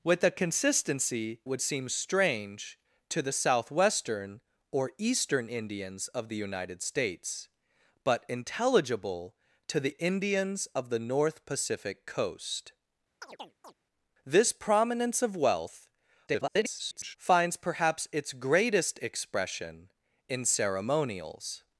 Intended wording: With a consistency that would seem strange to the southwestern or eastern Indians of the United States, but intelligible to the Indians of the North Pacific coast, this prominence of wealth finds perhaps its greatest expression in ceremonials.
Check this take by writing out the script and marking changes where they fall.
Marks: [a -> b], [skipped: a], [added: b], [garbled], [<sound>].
With a consistency [skipped: that] would seem strange to the southwestern or eastern Indians of the United States, but intelligible to the Indians of the North Pacific coast, [chirp] this prominence of wealth [garbled] finds perhaps its greatest expression in ceremonials.